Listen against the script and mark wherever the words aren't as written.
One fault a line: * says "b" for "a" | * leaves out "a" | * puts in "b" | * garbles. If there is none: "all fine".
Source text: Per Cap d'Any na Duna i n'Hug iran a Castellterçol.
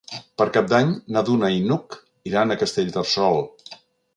all fine